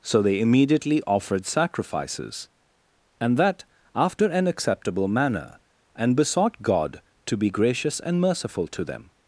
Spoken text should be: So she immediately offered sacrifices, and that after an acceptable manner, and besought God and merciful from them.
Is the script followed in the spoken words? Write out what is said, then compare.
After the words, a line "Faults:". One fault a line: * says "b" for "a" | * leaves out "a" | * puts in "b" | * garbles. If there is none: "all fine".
So they immediately offered sacrifices, and that after an acceptable manner, and besought God to be gracious and merciful to them.
Faults:
* says "they" for "she"
* puts in "to be gracious"
* says "to" for "from"